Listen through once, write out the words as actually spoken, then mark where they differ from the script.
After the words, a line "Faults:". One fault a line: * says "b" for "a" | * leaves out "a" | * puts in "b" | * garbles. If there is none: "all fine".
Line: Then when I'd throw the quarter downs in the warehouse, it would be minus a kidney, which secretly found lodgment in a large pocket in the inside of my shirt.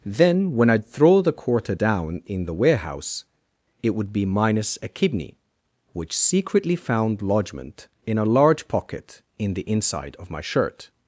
Then when I'd throw the quarter down in the warehouse, it would be minus a kidney, which secretly found lodgment in a large pocket in the inside of my shirt.
Faults:
* says "down" for "downs"